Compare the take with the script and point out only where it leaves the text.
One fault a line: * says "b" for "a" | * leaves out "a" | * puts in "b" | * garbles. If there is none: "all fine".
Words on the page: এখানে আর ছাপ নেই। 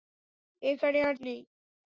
* leaves out "ছাপ"